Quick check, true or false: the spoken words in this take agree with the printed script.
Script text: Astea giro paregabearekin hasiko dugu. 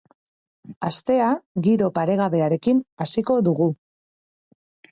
true